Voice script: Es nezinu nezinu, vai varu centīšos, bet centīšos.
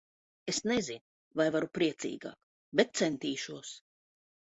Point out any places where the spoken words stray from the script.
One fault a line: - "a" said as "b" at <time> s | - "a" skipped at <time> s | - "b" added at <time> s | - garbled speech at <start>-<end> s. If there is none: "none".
- "nezinu" skipped at 1.0 s
- "centīšos" said as "priecīgāk" at 1.8 s